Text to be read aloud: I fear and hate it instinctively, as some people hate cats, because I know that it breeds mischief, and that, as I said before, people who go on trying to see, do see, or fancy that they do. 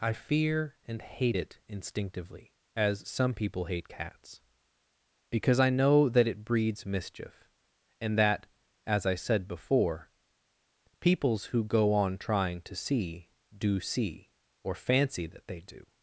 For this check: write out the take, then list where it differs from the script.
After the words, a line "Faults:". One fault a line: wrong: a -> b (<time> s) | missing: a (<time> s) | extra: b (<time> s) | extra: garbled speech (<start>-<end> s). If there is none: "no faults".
I fear and hate it instinctively, as some people hate cats, because I know that it breeds mischief, and that, as I said before, peoples who go on trying to see, do see, or fancy that they do.
Faults:
wrong: people -> peoples (11.0 s)